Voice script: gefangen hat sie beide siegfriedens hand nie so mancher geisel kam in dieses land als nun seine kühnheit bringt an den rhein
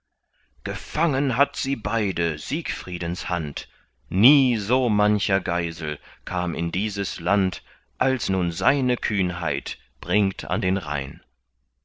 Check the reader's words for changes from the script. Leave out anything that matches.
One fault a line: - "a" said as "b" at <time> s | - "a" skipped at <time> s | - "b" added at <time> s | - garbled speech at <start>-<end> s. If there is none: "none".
none